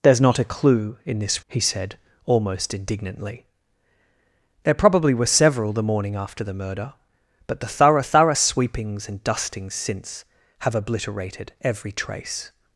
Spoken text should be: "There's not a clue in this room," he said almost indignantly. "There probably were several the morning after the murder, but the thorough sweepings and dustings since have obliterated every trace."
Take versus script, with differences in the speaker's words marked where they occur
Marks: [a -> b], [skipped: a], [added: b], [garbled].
"There's not a clue in this [skipped: room,"] he said almost indignantly. "There probably were several the morning after the murder, but the thorough [added: thorough] sweepings and dustings since have obliterated every trace."